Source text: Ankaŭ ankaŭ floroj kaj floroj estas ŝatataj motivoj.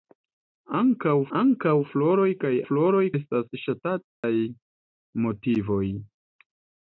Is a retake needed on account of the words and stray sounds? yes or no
yes